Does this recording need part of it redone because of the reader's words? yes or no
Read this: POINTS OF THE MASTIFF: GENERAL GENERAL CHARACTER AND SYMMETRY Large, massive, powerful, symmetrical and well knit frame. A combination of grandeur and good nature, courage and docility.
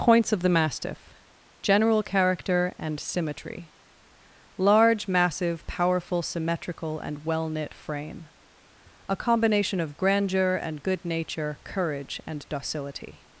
yes